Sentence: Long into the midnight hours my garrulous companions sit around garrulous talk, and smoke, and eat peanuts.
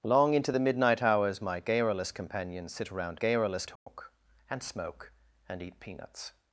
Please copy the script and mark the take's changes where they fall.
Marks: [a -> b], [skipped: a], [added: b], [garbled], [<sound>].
Long into the midnight hours my garrulous companions sit around garrulous talk, [dropout] and smoke, and eat peanuts.